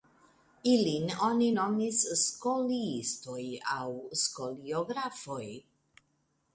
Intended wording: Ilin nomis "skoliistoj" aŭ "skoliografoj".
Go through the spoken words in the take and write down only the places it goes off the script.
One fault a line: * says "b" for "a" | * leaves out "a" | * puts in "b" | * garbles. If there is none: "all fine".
* puts in "oni"